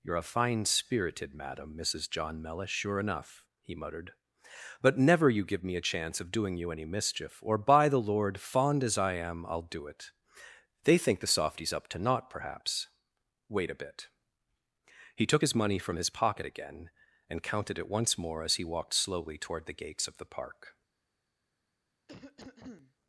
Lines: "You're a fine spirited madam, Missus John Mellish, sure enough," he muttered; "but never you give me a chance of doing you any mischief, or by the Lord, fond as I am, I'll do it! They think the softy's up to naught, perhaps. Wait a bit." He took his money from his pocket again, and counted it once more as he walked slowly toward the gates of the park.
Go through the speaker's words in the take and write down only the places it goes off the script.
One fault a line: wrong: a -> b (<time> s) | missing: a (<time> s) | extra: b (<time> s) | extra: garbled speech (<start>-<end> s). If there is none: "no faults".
no faults